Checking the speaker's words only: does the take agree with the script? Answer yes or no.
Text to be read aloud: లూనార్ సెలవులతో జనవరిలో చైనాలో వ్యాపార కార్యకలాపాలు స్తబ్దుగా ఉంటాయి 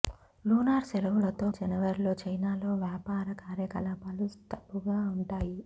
yes